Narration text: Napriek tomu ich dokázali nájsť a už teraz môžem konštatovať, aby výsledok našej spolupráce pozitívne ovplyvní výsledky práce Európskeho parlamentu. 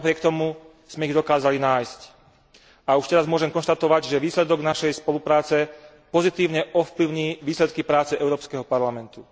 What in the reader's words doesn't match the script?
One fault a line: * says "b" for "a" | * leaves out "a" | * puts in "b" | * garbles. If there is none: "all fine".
* puts in "sme"
* says "že" for "aby"